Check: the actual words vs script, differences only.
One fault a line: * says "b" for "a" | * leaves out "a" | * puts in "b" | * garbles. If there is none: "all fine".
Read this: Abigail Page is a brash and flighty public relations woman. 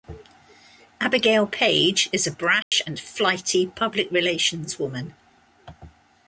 all fine